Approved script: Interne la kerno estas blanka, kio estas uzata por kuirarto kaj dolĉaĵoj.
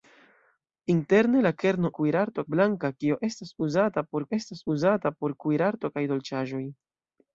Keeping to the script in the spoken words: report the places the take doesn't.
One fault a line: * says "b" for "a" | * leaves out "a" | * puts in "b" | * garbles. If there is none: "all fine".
* says "kuirarto" for "estas"
* puts in "estas uzata por"